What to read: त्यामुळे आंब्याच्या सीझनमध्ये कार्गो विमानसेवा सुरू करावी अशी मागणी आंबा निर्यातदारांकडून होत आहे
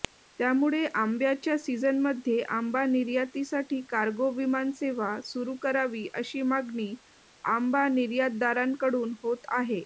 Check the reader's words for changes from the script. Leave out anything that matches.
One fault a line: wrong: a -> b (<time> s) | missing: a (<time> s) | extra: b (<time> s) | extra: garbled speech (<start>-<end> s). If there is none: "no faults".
extra: आंबा निर्यातीसाठी (2.5 s)